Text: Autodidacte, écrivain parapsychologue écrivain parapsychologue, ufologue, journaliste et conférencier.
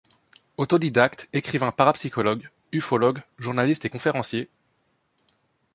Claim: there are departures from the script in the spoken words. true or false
true